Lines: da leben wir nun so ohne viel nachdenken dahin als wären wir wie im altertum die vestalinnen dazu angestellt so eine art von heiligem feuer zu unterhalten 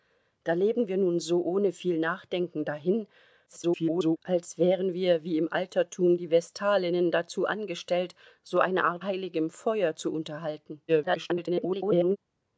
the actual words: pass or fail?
fail